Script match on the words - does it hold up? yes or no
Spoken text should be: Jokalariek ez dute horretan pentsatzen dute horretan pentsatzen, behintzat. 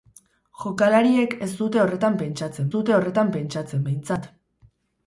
yes